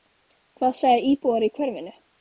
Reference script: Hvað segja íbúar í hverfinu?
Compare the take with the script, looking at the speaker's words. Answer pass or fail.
pass